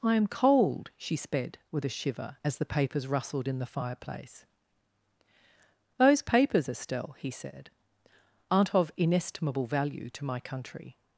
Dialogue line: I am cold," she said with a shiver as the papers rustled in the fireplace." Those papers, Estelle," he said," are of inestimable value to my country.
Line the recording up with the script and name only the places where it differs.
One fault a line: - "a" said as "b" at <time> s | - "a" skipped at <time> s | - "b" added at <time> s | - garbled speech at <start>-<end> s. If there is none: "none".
- "said" said as "sped" at 1.1 s
- "are" said as "aren't" at 8.5 s